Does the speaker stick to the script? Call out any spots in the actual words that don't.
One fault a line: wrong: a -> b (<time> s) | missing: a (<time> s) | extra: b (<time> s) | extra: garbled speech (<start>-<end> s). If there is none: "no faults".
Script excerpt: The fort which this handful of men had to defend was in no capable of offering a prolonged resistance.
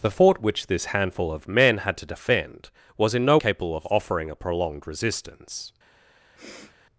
no faults